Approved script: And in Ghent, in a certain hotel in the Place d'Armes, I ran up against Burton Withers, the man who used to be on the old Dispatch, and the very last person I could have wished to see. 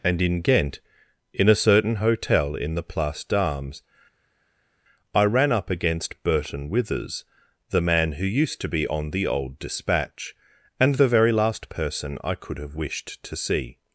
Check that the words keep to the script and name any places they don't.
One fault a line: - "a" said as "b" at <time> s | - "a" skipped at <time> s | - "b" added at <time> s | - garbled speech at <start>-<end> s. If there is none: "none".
none